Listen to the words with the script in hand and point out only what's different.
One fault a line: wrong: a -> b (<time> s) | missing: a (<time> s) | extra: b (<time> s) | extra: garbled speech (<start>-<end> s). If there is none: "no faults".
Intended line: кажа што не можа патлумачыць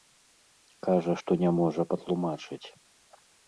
no faults